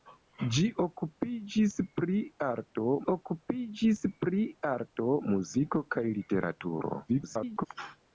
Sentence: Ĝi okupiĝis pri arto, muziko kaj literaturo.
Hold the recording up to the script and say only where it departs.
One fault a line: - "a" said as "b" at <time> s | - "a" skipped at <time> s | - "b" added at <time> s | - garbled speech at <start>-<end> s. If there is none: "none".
- "okupiĝis pri arto" added at 3.1 s
- garbled speech at 7.1-7.7 s